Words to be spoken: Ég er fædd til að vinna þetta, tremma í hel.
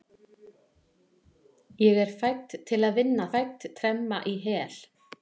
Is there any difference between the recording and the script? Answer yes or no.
yes